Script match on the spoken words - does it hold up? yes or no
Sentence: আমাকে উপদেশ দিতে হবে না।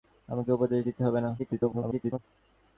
no